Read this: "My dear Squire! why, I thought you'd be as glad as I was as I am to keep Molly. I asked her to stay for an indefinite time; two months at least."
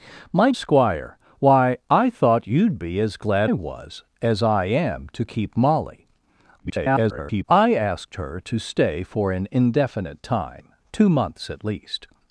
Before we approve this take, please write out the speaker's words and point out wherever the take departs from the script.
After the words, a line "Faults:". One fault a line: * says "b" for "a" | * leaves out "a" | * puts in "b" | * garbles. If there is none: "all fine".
"My Squire! why, I thought you'd be as glad was as I am to keep Molly. [garbled] I asked her to stay for an indefinite time; two months at least."
Faults:
* leaves out "dear"
* leaves out "as I"
* garbles